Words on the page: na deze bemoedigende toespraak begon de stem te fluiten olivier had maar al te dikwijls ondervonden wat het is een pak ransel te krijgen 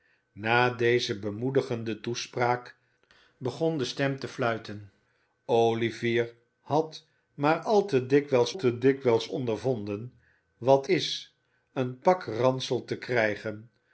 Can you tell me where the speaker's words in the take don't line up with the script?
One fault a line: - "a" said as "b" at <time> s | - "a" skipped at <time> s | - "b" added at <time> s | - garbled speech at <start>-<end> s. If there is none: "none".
- "te dikwijls" added at 8.6 s
- "het" skipped at 10.9 s